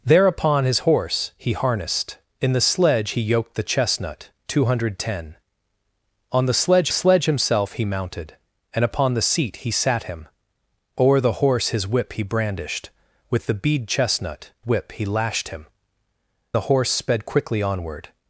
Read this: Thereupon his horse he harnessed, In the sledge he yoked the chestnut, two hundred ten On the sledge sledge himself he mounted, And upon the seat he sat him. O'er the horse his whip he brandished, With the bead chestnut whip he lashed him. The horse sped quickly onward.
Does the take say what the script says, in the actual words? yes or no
yes